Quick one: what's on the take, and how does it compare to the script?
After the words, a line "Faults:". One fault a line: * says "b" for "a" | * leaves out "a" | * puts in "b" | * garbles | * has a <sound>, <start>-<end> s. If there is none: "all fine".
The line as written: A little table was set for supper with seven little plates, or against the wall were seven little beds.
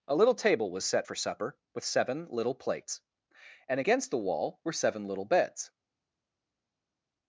A little table was set for supper with seven little plates, and against the wall were seven little beds.
Faults:
* says "and" for "or"